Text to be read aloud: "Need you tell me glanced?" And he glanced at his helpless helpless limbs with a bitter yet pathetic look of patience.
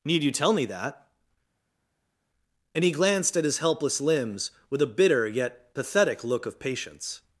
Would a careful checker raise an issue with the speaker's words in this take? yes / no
yes